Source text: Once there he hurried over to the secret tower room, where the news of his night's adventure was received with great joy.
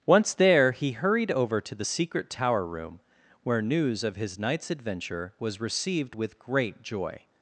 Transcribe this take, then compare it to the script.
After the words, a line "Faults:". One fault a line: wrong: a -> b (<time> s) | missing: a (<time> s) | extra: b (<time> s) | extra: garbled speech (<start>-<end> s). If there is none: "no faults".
Once there he hurried over to the secret tower room, where news of his night's adventure was received with great joy.
Faults:
missing: the (3.6 s)